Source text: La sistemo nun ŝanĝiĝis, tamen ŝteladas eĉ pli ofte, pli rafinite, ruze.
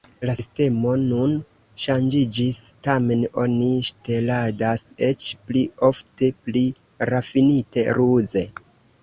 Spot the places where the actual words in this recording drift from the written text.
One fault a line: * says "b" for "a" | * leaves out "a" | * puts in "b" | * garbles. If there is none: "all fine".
* puts in "oni"